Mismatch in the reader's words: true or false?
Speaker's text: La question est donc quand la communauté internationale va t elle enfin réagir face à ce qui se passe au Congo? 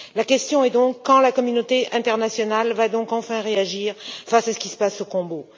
false